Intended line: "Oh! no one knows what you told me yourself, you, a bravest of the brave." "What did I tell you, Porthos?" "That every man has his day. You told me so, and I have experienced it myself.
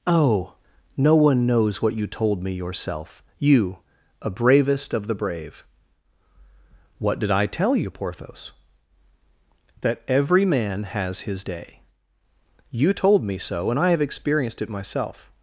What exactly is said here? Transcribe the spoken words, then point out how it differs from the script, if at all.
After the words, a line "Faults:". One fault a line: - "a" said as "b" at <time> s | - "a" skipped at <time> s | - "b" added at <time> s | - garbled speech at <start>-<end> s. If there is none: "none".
"Oh! no one knows what you told me yourself, you, a bravest of the brave." "What did I tell you, Porthos?" "That every man has his day. You told me so, and I have experienced it myself.
Faults:
none